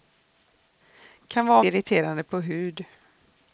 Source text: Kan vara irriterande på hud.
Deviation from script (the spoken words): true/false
false